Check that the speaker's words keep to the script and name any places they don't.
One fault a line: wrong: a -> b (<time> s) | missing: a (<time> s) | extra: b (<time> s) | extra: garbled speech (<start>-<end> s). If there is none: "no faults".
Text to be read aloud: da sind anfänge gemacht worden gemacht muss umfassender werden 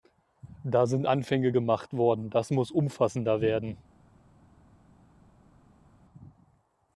wrong: gemacht -> das (2.3 s)